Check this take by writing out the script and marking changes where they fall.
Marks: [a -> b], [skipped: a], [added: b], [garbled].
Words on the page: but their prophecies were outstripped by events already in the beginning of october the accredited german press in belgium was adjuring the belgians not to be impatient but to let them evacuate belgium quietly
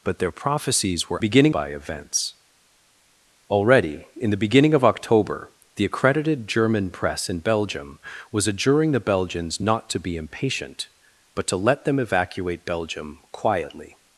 but their prophecies were [outstripped -> beginning] by events already in the beginning of october the accredited german press in belgium was adjuring the belgians not to be impatient but to let them evacuate belgium quietly